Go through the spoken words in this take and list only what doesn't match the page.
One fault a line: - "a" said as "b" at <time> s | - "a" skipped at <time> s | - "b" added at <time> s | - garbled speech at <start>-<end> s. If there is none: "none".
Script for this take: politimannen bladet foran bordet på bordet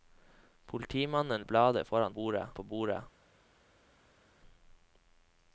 none